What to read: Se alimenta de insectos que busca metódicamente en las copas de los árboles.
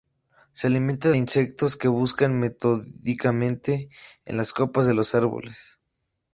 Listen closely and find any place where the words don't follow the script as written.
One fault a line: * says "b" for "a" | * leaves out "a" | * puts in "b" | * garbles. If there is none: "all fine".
* leaves out "de"